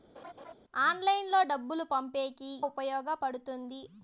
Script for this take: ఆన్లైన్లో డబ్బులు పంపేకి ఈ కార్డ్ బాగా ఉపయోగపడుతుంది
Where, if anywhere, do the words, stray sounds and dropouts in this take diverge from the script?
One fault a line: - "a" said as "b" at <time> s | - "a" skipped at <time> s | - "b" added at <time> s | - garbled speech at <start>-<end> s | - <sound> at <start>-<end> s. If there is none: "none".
- laugh at 0.2-0.5 s
- "ఈ కార్డ్ బాగా" skipped at 2.5 s